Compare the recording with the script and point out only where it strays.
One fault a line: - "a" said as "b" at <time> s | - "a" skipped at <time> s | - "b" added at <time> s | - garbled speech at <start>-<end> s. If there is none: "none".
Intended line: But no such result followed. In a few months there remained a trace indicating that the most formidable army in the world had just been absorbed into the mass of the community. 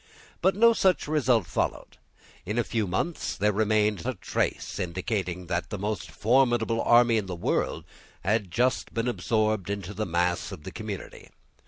none